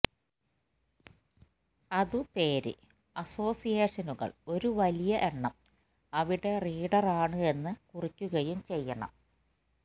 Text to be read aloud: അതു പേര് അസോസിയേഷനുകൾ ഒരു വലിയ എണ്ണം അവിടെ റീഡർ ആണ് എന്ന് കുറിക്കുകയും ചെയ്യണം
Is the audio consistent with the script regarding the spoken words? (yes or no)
yes